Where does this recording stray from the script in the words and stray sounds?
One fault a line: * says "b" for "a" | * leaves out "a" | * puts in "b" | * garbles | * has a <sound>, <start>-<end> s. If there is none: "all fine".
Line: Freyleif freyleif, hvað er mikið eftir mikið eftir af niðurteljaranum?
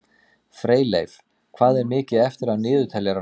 * leaves out "freyleif"
* leaves out "mikið eftir"